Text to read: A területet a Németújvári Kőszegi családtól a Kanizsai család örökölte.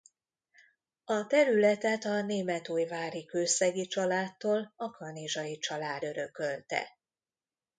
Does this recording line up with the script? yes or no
yes